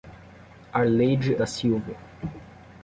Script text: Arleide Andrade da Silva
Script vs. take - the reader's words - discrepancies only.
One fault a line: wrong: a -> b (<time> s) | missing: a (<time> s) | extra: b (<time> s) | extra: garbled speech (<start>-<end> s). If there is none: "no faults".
missing: Andrade (1.4 s)